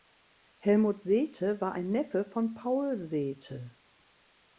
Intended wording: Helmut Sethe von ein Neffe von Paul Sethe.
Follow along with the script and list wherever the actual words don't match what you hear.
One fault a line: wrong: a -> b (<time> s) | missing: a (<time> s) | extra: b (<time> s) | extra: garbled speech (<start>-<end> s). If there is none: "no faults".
wrong: von -> war (1.6 s)